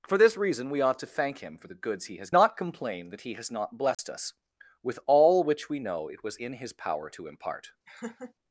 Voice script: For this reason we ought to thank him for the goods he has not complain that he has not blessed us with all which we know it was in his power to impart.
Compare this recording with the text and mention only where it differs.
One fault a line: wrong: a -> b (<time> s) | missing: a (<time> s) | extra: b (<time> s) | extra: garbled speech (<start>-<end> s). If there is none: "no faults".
no faults